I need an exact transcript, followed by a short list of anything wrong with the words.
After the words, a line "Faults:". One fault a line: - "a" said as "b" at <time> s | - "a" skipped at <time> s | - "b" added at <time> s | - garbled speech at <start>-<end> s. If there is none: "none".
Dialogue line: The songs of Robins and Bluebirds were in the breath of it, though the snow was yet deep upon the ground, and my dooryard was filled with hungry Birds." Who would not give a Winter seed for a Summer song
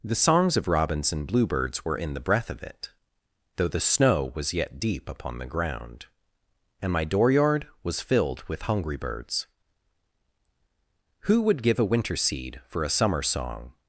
The songs of Robins and Bluebirds were in the breath of it, though the snow was yet deep upon the ground, and my dooryard was filled with hungry Birds." Who would give a Winter seed for a Summer song
Faults:
- "not" skipped at 11.6 s